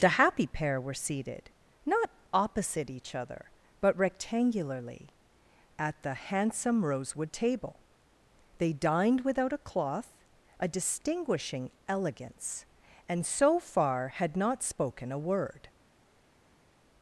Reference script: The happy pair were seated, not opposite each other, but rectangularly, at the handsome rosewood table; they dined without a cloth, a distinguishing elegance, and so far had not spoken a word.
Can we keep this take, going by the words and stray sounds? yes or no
yes